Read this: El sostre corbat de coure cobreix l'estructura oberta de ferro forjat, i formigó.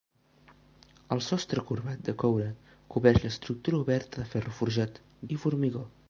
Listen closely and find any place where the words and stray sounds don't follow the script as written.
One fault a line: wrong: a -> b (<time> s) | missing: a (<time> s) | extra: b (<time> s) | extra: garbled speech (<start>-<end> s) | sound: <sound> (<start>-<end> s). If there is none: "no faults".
no faults